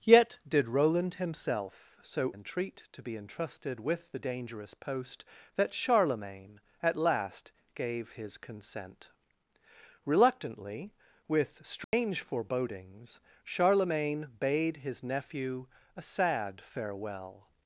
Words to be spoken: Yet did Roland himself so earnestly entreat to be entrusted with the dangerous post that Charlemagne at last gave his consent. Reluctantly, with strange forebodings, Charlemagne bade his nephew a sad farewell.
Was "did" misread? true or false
false